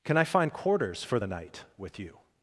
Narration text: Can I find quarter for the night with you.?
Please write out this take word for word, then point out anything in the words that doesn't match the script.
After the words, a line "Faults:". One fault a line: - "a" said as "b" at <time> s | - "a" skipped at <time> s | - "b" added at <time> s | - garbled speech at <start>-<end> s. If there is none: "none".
Can I find quarters for the night with you.?
Faults:
- "quarter" said as "quarters" at 0.5 s